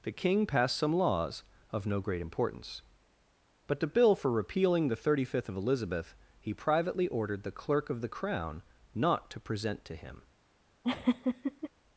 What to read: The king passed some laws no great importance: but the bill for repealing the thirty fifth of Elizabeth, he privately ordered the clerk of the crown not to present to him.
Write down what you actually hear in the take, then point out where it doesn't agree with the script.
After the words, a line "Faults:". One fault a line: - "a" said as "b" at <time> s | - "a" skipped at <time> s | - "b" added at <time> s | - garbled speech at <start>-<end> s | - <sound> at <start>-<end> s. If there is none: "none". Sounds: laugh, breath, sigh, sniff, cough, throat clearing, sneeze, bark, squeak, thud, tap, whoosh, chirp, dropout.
The king passed some laws of no great importance: but the bill for repealing the thirty fifth of Elizabeth, he privately ordered the clerk of the crown not to present to him.
Faults:
- "of" added at 1.7 s
- laugh at 10.8-11.7 s